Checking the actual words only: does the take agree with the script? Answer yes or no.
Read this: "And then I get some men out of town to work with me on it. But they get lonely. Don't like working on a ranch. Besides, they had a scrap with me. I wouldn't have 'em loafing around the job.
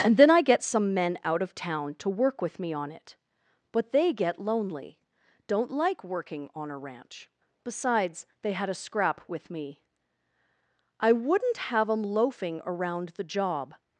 yes